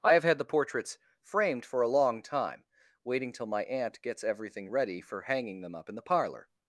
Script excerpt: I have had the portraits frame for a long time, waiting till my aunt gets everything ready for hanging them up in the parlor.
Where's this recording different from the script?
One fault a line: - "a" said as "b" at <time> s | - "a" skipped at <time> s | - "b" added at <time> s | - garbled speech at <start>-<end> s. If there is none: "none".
- "frame" said as "framed" at 1.2 s